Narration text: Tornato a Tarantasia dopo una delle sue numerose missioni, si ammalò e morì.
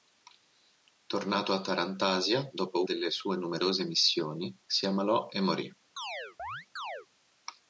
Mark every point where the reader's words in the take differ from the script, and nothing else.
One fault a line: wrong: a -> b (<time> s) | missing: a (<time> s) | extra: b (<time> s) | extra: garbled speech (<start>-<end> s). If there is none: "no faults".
missing: una (2.8 s)